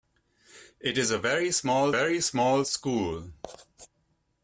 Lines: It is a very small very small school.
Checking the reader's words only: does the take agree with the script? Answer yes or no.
yes